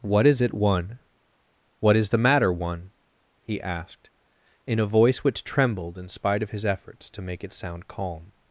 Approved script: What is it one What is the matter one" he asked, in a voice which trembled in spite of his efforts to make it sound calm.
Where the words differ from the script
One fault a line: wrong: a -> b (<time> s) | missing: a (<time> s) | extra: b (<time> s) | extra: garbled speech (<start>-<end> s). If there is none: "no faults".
no faults